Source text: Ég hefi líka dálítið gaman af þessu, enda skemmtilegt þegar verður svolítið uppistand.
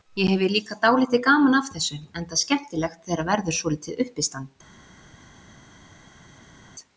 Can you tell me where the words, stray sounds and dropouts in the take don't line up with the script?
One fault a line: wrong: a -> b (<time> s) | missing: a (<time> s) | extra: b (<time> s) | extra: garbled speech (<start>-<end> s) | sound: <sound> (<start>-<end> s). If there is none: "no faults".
no faults